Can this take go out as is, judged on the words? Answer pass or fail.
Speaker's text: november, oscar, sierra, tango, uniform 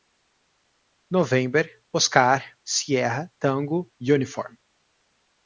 pass